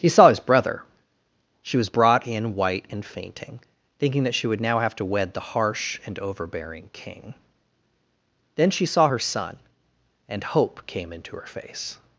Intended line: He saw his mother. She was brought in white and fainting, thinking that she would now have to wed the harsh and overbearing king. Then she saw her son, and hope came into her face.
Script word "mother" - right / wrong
wrong